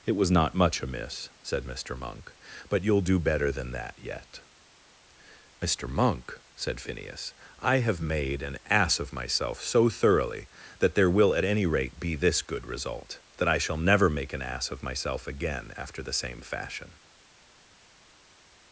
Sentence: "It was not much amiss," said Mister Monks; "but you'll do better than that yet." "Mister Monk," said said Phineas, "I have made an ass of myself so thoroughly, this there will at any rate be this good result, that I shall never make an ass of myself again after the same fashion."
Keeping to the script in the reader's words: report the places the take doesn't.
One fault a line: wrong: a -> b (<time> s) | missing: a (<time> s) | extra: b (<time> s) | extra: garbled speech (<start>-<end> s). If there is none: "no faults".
wrong: Monks -> Monk (1.9 s)
missing: said (6.8 s)
wrong: this -> that (10.8 s)